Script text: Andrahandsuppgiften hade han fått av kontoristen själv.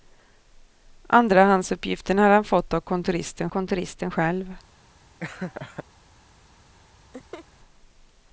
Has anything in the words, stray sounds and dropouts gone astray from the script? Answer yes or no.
yes